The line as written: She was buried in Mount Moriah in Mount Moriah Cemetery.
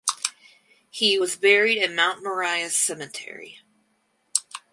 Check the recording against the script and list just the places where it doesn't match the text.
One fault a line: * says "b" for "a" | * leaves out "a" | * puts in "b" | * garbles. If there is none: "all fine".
* says "He" for "She"
* leaves out "in Mount Moriah"